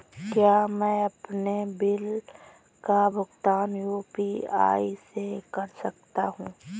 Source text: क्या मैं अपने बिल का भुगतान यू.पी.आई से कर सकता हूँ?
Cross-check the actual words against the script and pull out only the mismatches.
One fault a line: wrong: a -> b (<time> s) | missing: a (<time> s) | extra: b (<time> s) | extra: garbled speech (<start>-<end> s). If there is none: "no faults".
no faults